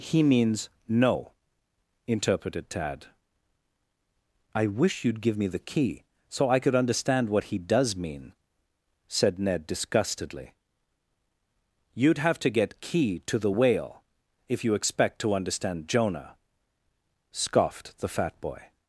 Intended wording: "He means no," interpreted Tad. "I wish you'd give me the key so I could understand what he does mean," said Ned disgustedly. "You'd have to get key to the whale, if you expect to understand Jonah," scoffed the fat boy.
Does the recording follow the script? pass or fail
pass